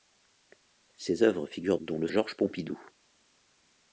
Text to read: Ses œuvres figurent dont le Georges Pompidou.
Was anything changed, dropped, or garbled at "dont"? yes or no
no